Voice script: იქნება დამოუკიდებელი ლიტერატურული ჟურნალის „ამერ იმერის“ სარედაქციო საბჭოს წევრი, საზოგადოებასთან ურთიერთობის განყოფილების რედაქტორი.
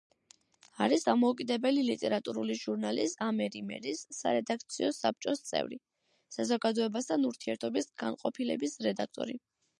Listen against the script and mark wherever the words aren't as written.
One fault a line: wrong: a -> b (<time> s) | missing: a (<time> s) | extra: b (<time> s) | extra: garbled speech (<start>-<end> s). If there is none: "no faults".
wrong: იქნება -> არის (0.8 s)